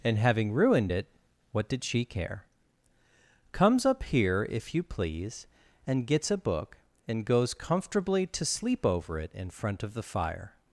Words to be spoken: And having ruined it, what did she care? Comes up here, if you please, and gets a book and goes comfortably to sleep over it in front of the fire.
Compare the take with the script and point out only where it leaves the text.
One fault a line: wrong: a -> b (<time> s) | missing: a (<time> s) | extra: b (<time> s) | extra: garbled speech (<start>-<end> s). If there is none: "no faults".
no faults